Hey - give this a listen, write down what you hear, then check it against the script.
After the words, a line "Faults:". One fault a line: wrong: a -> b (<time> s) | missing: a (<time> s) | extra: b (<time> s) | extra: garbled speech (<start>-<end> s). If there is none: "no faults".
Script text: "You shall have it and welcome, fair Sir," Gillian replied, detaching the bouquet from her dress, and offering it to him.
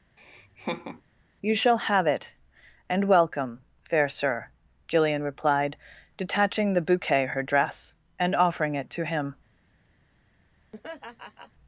"You shall have it and welcome, fair Sir," Gillian replied, detaching the bouquet her dress, and offering it to him.
Faults:
missing: from (7.2 s)